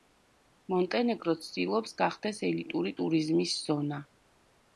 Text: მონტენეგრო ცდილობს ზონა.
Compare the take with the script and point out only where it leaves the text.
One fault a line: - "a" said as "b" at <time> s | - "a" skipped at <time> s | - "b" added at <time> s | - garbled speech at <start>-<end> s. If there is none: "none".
- "გახდეს ელიტური ტურიზმის" added at 2.0 s